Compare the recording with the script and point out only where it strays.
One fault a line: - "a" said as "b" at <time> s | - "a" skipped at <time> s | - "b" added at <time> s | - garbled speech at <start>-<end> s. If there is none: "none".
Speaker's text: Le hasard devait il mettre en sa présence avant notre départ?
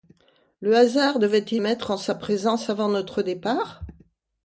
none